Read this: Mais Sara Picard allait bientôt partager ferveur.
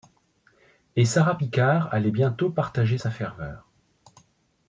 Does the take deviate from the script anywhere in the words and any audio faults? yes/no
yes